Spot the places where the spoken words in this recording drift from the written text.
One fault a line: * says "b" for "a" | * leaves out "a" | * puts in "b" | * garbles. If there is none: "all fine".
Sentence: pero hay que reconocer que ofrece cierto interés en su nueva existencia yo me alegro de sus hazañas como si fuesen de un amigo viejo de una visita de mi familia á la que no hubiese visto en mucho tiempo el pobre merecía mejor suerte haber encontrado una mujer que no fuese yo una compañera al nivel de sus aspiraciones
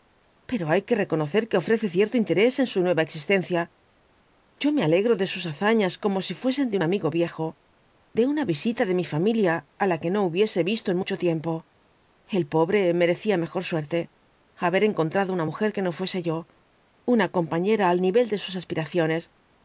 all fine